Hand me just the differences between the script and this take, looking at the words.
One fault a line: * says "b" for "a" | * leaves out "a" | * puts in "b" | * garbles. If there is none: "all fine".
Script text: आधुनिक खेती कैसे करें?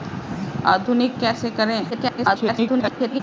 * leaves out "खेती"
* garbles